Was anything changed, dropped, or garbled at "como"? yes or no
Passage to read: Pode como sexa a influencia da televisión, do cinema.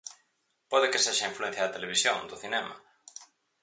yes